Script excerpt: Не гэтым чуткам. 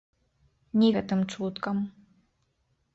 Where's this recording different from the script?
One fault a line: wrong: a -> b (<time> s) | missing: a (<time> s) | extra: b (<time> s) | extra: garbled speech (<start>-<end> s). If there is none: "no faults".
no faults